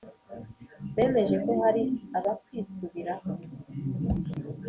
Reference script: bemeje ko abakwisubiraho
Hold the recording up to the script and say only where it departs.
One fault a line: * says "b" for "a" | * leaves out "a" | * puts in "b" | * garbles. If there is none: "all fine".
* puts in "hari"